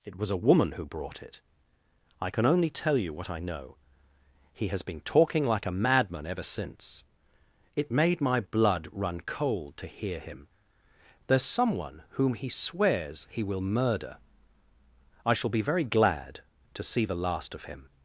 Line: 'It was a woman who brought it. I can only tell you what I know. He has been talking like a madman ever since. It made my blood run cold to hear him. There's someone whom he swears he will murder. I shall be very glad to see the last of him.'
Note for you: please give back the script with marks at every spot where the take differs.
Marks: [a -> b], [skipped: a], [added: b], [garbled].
'It was a woman who brought it. I can only tell you what I know. He has been talking like a madman ever since. It made my blood run cold to hear him. There's someone whom he swears he will murder. I shall be very glad to see the last of him.'